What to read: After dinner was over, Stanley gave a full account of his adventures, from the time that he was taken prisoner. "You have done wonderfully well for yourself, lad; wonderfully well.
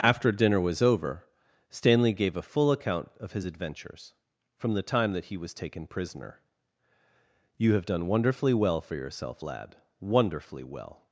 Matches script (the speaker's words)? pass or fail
pass